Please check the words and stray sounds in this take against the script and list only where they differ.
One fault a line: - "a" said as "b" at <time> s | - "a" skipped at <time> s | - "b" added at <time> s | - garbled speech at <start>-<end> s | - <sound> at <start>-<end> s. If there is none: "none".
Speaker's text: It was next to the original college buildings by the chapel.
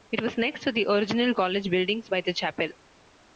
none